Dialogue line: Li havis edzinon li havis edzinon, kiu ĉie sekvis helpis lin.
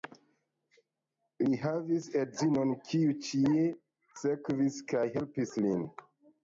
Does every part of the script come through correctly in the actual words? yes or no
no